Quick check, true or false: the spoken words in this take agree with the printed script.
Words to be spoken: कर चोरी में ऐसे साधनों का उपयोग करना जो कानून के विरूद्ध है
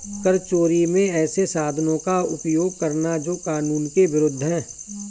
true